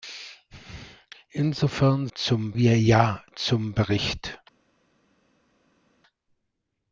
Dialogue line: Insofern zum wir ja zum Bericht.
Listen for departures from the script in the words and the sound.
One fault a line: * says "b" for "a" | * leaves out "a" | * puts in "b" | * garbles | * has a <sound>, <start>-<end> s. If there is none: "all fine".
all fine